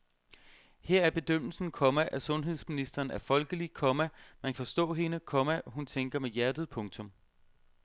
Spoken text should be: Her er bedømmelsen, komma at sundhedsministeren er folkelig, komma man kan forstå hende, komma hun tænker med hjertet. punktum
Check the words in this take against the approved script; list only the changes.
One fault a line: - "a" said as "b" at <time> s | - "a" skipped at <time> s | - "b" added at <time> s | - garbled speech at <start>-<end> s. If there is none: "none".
- "kan" skipped at 4.5 s